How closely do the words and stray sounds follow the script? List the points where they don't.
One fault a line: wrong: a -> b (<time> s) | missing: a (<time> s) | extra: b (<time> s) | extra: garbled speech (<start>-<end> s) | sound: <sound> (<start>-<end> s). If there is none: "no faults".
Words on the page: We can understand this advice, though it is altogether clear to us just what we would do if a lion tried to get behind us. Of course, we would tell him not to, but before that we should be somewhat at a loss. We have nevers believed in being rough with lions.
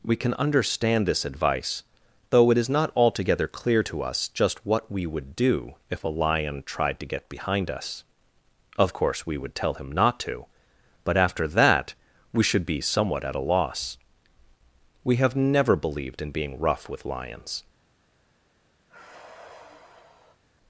extra: not (2.7 s)
wrong: before -> after (11.2 s)
wrong: nevers -> never (15.3 s)
sound: sigh (18.9-20.4 s)